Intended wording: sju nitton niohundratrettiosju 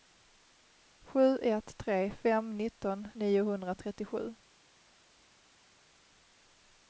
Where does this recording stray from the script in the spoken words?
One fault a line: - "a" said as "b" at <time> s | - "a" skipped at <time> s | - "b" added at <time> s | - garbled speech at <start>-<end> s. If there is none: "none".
- "ett tre fem" added at 1.4 s